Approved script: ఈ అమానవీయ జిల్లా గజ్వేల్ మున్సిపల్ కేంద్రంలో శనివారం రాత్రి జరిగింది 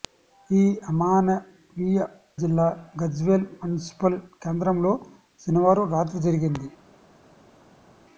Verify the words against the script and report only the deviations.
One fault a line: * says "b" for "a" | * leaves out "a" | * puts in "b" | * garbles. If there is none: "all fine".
all fine